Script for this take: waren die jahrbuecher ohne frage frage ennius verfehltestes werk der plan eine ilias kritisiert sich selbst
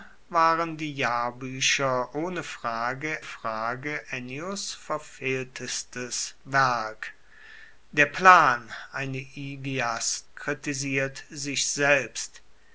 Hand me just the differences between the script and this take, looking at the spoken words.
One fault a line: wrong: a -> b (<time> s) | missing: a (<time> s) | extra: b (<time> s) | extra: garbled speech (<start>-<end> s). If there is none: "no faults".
no faults